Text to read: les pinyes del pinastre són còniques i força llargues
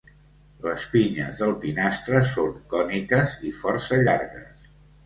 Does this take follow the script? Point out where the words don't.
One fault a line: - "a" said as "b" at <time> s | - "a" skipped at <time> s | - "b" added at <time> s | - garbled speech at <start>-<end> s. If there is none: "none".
none